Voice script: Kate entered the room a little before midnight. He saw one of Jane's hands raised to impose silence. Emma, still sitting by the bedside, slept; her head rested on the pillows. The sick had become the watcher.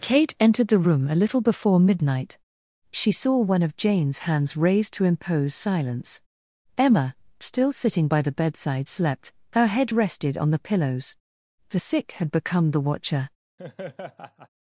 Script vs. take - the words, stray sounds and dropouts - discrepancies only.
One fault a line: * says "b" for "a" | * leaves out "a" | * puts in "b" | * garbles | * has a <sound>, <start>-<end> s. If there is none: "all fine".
* says "She" for "He"
* has a laugh, 13.6-14.5 s